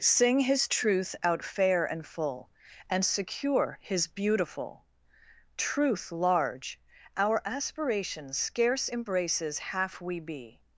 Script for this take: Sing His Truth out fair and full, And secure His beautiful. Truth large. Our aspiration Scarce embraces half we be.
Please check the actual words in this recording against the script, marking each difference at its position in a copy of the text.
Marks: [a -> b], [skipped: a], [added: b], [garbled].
Sing His Truth out fair and full, And secure His beautiful. Truth large. Our aspiration Scarce embraces half we be.